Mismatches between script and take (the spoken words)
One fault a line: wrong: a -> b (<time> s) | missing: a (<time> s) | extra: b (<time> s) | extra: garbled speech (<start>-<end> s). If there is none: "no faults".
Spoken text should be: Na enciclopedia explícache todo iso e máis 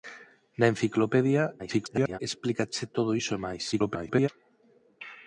extra: garbled speech (1.6-2.2 s)
extra: garbled speech (3.7-4.3 s)